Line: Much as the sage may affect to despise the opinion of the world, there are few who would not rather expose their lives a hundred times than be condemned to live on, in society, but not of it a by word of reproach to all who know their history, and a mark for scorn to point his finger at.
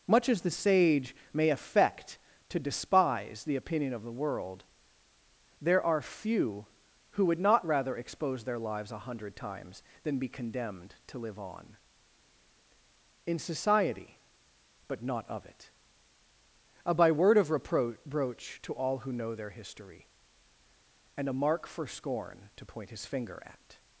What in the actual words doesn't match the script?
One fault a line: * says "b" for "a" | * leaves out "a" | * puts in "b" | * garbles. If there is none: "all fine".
all fine